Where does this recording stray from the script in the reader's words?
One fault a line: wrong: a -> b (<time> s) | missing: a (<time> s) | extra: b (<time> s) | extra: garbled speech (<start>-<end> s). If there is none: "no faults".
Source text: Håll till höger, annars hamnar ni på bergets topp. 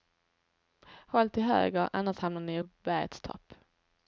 no faults